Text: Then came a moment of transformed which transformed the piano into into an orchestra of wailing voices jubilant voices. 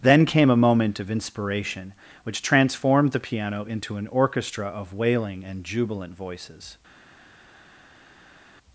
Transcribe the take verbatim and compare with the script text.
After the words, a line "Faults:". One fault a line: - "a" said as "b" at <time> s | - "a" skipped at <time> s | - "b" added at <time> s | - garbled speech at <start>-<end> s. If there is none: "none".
Then came a moment of inspiration which transformed the piano into an orchestra of wailing and jubilant voices.
Faults:
- "transformed" said as "inspiration" at 1.1 s
- "into" skipped at 4.0 s
- "voices" said as "and" at 5.5 s